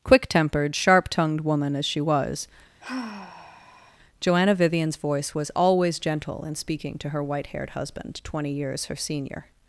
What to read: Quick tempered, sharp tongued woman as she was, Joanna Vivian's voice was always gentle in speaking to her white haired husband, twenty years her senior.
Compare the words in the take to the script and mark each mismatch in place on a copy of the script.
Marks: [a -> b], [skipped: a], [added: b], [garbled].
Quick tempered, sharp tongued woman as she was, Joanna Vivian's voice was always gentle in speaking to her white haired husband, twenty years her senior.